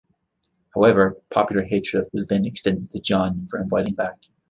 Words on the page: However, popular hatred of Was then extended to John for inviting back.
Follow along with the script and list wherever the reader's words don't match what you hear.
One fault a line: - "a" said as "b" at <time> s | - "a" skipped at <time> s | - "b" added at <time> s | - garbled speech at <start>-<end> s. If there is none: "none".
none